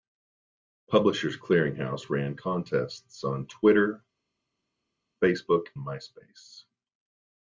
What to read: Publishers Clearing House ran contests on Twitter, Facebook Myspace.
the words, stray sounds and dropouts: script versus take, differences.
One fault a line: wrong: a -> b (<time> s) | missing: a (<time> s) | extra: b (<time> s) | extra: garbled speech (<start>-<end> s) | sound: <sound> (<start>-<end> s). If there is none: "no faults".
no faults